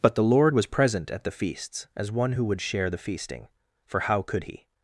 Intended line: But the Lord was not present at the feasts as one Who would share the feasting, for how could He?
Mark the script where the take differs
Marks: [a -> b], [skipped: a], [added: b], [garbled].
But the Lord was [skipped: not] present at the feasts as one Who would share the feasting, for how could He?